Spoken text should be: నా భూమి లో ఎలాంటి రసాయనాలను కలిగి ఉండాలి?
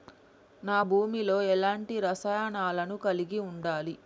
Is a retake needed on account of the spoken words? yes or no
no